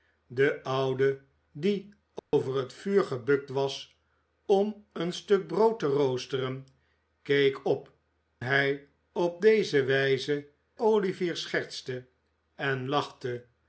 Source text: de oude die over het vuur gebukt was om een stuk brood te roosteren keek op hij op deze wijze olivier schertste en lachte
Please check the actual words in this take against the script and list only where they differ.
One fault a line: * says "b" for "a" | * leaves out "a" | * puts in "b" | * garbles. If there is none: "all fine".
all fine